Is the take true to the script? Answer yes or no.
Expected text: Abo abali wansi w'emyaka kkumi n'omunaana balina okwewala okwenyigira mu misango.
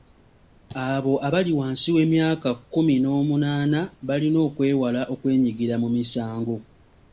yes